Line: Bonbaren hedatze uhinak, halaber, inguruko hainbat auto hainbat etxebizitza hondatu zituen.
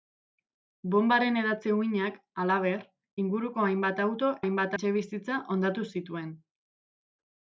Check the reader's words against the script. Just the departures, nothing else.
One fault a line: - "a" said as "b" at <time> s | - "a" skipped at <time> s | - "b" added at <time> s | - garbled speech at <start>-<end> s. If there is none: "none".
none